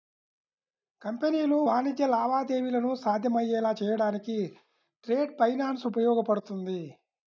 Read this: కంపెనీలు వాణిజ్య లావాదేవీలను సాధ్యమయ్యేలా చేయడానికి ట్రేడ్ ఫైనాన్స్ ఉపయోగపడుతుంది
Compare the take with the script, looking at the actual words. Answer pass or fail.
pass